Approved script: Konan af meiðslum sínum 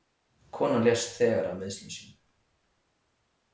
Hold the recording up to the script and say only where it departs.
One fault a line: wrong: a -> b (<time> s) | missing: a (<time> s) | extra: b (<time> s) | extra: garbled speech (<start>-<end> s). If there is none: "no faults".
extra: lést þegar (0.9 s)